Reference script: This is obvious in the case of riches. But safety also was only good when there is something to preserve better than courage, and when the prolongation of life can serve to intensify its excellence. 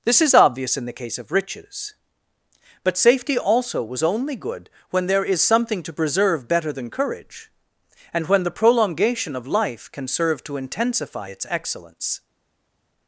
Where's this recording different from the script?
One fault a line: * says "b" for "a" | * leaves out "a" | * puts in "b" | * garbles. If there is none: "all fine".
all fine